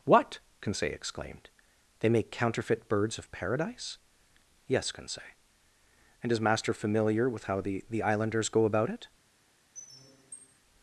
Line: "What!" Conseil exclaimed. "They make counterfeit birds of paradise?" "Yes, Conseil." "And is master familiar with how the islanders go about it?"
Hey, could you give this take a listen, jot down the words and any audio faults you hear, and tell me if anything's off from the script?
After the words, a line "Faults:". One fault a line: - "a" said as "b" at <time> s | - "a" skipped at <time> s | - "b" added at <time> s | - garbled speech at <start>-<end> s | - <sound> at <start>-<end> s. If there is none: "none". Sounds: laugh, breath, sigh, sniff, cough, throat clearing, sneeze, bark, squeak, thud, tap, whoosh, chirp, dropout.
"What!" Conseil exclaimed. "They make counterfeit birds of paradise?" "Yes, Conseil." "And is master familiar with how the the islanders go about it?"
Faults:
- "the" added at 7.9 s
- squeak at 9.7-10.6 s